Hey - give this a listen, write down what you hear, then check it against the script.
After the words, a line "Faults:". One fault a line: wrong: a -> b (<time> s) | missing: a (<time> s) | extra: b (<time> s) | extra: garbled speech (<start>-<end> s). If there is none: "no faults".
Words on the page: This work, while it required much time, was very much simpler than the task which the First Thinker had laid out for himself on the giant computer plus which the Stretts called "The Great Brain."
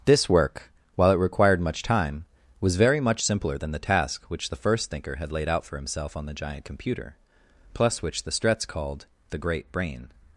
This work, while it required much time, was very much simpler than the task which the First Thinker had laid out for himself on the giant computer plus which the Stretts called "The Great Brain."
Faults:
no faults